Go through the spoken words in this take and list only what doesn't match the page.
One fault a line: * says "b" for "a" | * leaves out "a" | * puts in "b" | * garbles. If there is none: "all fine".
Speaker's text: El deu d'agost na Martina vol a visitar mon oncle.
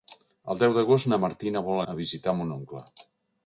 all fine